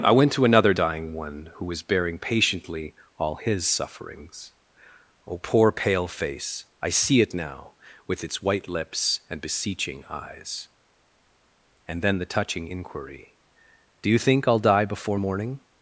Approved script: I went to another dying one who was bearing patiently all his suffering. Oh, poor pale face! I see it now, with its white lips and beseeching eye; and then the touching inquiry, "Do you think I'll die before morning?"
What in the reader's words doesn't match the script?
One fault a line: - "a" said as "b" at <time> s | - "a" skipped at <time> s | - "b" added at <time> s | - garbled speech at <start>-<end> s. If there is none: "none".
- "suffering" said as "sufferings" at 3.7 s
- "eye" said as "eyes" at 10.1 s